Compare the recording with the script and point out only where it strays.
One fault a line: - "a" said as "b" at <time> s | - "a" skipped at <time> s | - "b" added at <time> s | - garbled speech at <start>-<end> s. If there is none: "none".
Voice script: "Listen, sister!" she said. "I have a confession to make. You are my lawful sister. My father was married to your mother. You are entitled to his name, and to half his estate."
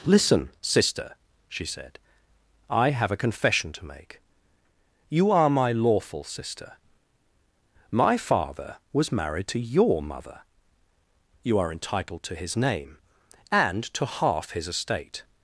none